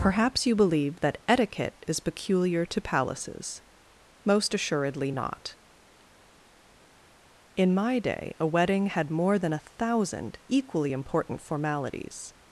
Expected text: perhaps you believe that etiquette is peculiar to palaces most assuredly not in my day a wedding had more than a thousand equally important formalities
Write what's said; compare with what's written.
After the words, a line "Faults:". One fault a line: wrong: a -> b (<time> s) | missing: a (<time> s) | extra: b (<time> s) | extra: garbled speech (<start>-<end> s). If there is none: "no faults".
perhaps you believe that etiquette is peculiar to palaces most assuredly not in my day a wedding had more than a thousand equally important formalities
Faults:
no faults